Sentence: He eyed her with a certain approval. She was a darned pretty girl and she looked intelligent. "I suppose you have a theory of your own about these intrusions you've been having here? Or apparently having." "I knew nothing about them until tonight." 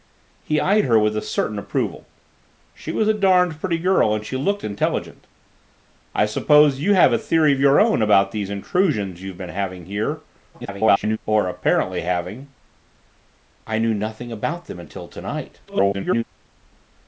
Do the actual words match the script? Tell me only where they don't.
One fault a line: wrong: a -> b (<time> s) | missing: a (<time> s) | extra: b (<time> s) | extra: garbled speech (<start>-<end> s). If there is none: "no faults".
extra: garbled speech (10.5-11.2 s)
extra: garbled speech (15.7-16.2 s)